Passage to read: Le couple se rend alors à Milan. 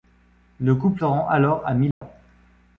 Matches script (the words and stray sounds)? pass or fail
fail